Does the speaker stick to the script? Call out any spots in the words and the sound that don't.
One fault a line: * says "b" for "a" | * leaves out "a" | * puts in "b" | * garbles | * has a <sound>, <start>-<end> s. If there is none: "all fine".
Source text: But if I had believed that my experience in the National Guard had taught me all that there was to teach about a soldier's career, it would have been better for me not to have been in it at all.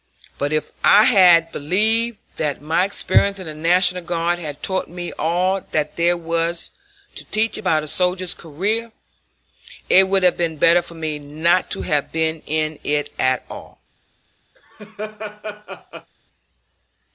* has a laugh, 14.5-16.1 s